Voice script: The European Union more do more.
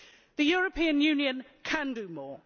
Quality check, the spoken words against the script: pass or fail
fail